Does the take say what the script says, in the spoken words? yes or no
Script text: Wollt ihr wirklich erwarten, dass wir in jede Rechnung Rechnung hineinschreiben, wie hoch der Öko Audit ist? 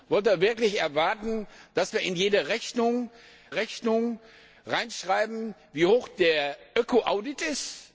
yes